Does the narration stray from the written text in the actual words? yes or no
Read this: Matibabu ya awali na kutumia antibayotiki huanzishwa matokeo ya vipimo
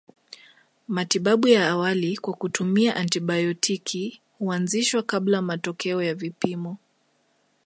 yes